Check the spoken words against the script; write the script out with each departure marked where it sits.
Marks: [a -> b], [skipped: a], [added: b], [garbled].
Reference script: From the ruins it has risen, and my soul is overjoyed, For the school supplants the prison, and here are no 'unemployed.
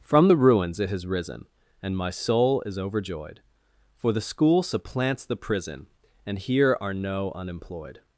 From the ruins it has risen, and my soul is overjoyed, For the school supplants the prison, and here are no 'unemployed.